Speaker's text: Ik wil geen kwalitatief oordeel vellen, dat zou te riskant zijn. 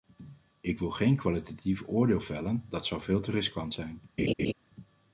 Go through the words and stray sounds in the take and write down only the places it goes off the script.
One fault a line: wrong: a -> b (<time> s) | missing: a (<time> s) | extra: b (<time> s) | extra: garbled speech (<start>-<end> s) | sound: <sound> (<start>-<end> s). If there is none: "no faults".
extra: veel (3.0 s)
sound: laugh (4.2-4.5 s)